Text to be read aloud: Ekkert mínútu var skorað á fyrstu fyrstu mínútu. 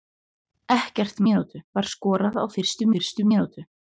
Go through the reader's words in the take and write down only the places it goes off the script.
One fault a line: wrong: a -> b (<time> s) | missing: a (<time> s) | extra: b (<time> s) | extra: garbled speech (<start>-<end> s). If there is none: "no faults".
no faults